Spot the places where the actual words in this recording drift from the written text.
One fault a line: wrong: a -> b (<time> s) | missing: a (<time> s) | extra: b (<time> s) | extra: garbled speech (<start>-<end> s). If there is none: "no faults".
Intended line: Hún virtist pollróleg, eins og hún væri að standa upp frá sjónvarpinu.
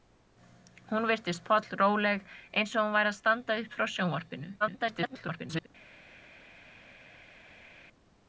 extra: garbled speech (4.6-5.7 s)